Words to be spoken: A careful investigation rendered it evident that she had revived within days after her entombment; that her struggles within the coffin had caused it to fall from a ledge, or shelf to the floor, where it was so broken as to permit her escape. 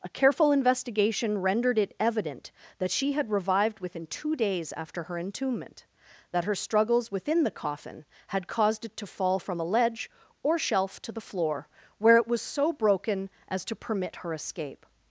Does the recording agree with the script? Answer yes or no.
no